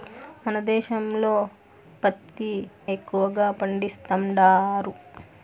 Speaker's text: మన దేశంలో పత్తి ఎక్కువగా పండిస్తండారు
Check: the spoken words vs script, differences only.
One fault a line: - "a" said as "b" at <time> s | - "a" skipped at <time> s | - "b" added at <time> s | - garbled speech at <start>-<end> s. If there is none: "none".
none